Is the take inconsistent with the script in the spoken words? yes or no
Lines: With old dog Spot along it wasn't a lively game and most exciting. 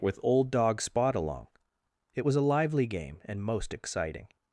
yes